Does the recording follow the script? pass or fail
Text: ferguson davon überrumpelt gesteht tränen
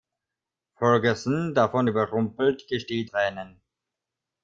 pass